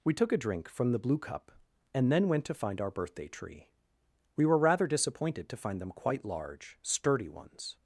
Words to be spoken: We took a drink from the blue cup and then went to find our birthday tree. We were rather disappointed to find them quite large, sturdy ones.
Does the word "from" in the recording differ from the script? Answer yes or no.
no